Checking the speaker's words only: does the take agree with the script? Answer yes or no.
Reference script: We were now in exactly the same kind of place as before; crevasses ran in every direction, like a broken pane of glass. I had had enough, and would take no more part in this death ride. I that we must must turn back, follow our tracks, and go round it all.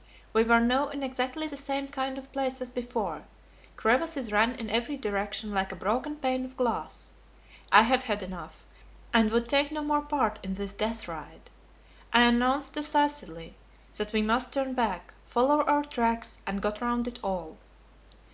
no